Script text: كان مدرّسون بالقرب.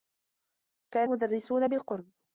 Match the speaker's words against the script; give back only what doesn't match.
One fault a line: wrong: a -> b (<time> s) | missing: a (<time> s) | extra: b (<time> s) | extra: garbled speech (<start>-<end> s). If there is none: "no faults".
no faults